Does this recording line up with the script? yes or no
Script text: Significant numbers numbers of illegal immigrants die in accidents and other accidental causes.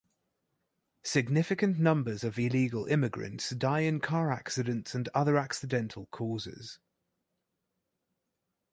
no